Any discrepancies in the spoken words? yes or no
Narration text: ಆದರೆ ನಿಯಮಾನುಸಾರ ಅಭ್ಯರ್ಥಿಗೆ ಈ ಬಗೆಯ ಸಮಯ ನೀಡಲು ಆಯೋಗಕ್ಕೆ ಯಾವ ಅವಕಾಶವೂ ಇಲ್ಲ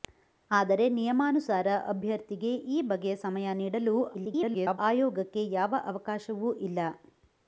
yes